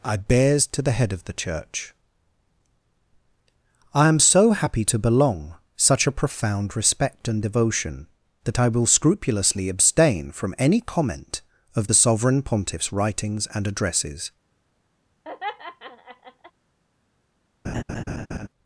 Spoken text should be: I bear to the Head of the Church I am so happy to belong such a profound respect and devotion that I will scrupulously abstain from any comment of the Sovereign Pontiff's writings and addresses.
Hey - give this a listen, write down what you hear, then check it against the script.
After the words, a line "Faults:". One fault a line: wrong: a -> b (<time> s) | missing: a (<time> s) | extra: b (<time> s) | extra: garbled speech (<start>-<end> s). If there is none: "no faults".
I bears to the Head of the Church I am so happy to belong such a profound respect and devotion that I will scrupulously abstain from any comment of the Sovereign Pontiff's writings and addresses.
Faults:
wrong: bear -> bears (0.2 s)